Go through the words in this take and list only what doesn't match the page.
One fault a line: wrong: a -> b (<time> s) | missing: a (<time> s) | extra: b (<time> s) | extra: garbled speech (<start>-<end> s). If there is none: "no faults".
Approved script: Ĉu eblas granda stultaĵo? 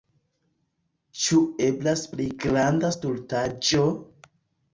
extra: pli (2.1 s)